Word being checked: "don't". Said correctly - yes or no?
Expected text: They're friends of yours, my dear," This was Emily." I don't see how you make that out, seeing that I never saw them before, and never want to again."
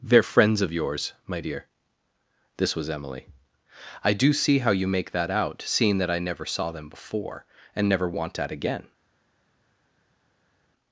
no